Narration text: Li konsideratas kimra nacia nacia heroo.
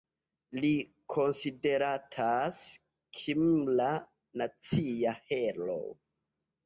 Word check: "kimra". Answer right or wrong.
right